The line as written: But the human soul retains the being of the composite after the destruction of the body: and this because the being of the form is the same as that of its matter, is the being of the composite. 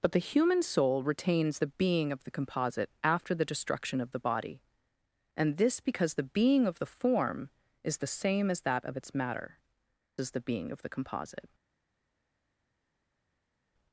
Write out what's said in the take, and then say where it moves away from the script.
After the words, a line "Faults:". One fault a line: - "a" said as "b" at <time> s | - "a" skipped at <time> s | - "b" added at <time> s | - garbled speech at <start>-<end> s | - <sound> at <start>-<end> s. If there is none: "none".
But the human soul retains the being of the composite after the destruction of the body: and this because the being of the form is the same as that of its matter, is the being of the composite.
Faults:
none